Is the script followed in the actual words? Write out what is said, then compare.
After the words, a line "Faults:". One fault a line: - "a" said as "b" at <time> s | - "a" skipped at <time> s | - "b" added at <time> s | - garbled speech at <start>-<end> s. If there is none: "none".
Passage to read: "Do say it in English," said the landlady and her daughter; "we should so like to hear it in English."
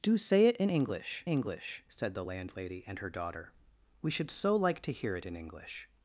"Do say it in English English," said the landlady and her daughter; "we should so like to hear it in English."
Faults:
- "English" added at 1.3 s